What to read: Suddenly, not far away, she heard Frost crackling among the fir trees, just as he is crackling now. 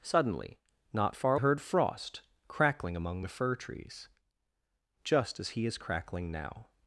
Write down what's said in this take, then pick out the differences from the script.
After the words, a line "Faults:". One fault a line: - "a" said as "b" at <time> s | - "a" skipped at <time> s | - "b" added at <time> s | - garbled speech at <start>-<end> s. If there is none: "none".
Suddenly, not far heard Frost crackling among the fir trees, just as he is crackling now.
Faults:
- "away she" skipped at 1.4 s